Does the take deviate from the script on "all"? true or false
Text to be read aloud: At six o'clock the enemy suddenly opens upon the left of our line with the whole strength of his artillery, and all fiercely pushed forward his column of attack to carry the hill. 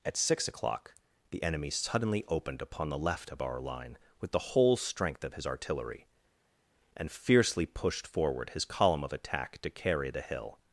true